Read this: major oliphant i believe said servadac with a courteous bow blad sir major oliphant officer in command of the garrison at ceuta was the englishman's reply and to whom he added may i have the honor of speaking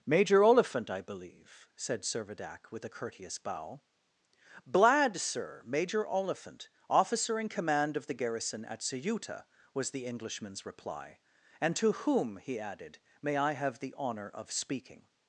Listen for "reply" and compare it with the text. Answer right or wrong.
right